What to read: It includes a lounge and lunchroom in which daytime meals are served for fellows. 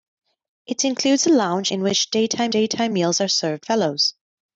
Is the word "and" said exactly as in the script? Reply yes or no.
no